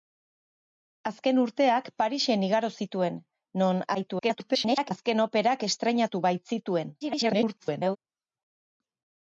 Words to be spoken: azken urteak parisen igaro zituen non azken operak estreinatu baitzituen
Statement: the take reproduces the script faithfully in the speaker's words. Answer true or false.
false